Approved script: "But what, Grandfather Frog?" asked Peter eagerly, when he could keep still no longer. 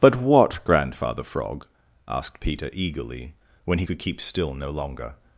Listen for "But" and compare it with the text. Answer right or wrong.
right